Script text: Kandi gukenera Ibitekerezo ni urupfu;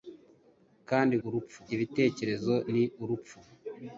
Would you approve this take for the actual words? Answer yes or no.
no